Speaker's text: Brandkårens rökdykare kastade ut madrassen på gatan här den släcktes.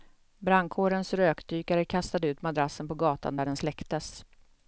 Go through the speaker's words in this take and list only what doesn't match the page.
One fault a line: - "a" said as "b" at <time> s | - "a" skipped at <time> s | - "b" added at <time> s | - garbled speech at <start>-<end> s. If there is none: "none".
- "här" said as "där" at 3.3 s